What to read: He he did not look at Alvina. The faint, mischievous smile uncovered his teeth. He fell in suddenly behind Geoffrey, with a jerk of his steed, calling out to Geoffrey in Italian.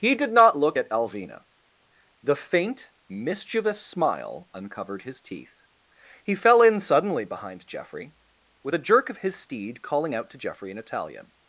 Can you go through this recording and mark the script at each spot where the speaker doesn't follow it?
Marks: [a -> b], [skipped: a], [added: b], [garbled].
He [skipped: he] did not look at Alvina. The faint, mischievous smile uncovered his teeth. He fell in suddenly behind Geoffrey, with a jerk of his steed, calling out to Geoffrey in Italian.